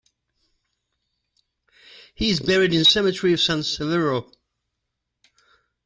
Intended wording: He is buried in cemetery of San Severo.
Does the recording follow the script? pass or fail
pass